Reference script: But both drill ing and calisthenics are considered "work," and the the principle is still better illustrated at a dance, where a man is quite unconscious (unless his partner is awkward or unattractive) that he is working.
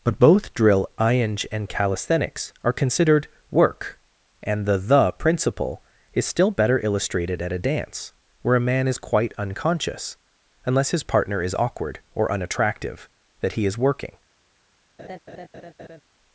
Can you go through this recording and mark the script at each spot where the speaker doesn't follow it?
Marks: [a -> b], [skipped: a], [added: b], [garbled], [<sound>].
But both drill ing and calisthenics are considered "work," and the the principle is still better illustrated at a dance, where a man is quite unconscious (unless his partner is awkward or unattractive) that he is working. [laugh]